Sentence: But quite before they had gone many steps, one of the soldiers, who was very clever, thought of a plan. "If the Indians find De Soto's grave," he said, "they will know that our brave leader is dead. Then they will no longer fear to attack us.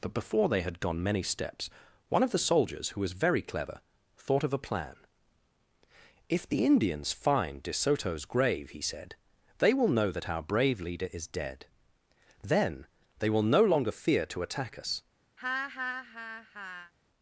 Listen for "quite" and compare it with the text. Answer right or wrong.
wrong